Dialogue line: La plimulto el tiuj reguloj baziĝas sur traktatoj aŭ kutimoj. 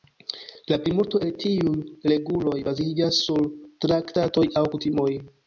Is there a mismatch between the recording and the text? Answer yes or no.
no